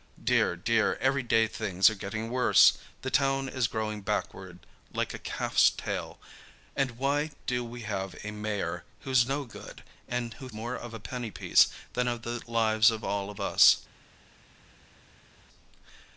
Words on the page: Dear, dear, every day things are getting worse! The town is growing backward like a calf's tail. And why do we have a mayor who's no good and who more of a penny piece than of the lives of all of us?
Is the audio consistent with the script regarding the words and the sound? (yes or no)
yes